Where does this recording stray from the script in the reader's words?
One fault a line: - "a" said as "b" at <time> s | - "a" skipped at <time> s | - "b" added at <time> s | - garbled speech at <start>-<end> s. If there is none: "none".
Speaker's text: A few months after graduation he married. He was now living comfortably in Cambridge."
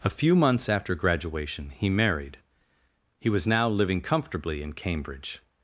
none